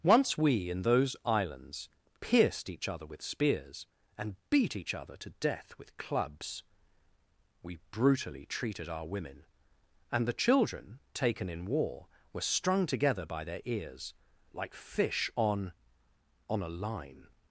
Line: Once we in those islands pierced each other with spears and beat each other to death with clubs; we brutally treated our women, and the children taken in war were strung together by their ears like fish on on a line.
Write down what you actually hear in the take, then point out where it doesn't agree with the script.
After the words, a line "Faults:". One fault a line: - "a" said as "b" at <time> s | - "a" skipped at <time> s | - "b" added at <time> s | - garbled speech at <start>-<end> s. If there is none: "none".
Once we in those islands pierced each other with spears and beat each other to death with clubs; we brutally treated our women, and the children taken in war were strung together by their ears like fish on on a line.
Faults:
none